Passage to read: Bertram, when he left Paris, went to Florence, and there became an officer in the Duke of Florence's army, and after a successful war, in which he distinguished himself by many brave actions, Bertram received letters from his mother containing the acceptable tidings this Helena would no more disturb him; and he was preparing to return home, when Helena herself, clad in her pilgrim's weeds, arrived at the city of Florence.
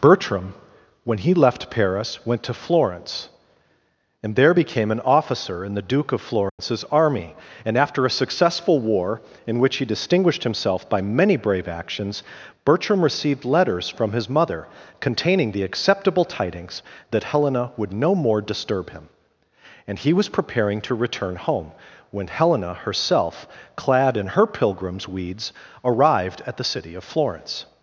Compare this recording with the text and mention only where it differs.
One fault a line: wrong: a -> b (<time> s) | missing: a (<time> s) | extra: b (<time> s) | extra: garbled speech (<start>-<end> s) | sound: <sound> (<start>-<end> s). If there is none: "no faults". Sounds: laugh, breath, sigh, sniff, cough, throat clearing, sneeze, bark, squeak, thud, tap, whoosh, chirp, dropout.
sound: dropout (6.5-6.6 s)
wrong: this -> that (17.1 s)